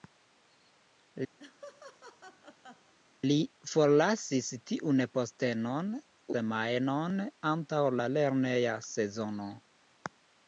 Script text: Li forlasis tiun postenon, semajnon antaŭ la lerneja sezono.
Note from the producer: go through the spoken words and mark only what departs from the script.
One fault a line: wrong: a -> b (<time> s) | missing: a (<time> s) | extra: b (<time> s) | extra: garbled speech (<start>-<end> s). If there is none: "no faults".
no faults